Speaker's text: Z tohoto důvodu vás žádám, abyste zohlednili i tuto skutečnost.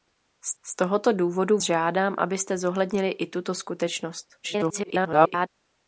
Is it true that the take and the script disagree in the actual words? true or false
true